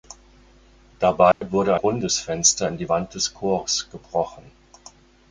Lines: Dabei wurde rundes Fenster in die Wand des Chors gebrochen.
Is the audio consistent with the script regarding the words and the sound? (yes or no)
no